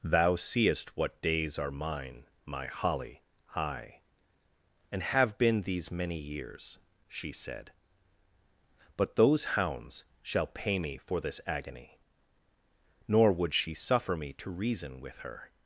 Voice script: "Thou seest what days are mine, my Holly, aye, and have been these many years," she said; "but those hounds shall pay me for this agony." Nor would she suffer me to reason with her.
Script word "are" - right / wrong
right